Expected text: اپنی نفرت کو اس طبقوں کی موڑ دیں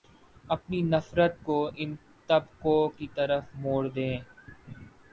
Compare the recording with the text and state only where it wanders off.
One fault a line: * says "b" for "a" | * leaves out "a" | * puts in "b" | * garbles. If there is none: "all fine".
* says "ان" for "اس"
* puts in "طرف"